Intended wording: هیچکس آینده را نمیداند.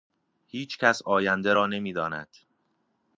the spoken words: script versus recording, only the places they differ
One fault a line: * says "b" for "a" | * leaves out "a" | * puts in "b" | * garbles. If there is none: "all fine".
all fine